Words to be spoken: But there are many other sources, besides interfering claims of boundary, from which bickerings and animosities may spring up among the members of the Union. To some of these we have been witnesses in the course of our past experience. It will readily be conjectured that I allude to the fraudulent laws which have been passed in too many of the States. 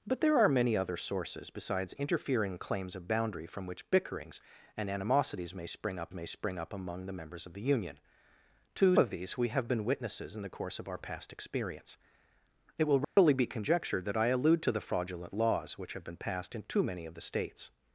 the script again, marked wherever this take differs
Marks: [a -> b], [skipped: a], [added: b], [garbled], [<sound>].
But there are many other sources, besides interfering claims of boundary, from which bickerings and animosities may spring up [added: may spring up] among the members of the Union. To [skipped: some] of these we have been witnesses in the course of our past experience. It will readily [dropout] be conjectured that I allude to the fraudulent laws which have been passed in too many of the States.